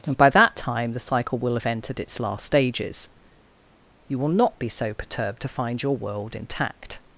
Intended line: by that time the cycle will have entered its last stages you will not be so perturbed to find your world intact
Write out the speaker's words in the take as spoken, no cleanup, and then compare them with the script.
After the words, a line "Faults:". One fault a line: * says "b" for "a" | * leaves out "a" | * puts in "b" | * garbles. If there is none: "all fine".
and by that time the cycle will have entered its last stages you will not be so perturbed to find your world intact
Faults:
* puts in "and"